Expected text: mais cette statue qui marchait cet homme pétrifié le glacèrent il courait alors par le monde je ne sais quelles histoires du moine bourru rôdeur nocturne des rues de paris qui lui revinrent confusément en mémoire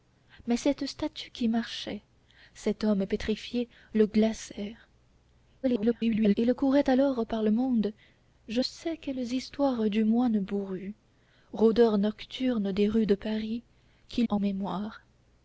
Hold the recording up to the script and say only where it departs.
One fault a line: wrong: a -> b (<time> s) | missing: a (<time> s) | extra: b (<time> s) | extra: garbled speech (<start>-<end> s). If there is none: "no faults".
extra: garbled speech (5.6-6.4 s)
missing: ne (8.6 s)
missing: lui revinrent confusément (14.2 s)